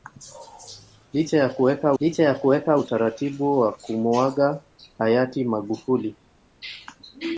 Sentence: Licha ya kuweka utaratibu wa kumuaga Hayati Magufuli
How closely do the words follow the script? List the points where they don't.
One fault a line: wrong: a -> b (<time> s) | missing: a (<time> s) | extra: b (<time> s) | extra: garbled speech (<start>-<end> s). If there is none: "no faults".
extra: licha ya kuweka (2.0 s)